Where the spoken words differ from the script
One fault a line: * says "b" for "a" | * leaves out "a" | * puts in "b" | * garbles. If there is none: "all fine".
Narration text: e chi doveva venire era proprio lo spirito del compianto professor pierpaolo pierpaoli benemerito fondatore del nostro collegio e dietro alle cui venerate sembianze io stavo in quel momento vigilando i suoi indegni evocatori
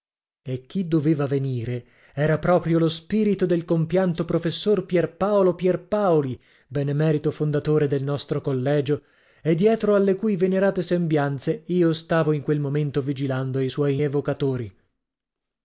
* leaves out "indegni"